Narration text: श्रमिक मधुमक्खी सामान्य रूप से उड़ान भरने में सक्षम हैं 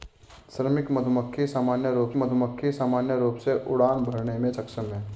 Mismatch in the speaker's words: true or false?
true